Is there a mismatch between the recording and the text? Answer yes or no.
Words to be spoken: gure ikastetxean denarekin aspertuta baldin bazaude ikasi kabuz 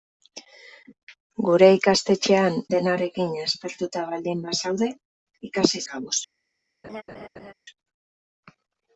no